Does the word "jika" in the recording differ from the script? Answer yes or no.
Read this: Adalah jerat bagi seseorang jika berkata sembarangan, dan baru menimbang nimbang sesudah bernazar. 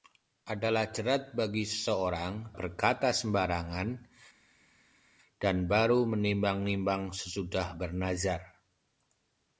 yes